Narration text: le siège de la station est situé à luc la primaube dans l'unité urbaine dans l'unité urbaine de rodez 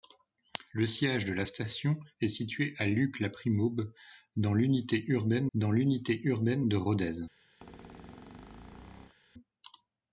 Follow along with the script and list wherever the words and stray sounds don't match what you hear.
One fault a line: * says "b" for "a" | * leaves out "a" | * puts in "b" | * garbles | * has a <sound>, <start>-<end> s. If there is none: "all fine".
* has a squeak, 7.6-9.2 s